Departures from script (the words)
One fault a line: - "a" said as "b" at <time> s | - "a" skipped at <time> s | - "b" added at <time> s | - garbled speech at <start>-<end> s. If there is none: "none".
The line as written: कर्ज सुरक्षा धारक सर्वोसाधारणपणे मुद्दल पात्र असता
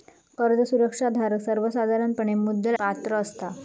none